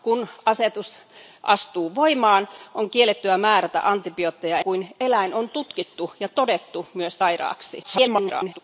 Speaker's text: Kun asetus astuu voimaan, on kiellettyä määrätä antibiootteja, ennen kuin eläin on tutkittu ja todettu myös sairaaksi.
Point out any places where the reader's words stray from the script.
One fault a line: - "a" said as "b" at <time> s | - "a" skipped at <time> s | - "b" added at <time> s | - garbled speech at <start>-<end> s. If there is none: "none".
- "ennen" skipped at 4.6 s
- garbled speech at 7.8-8.6 s